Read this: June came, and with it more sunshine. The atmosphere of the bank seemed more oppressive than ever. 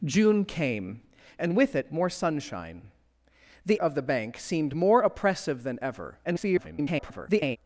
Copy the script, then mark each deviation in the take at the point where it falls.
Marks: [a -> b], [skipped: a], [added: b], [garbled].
June came, and with it more sunshine. The [skipped: atmosphere] of the bank seemed more oppressive than ever. [garbled]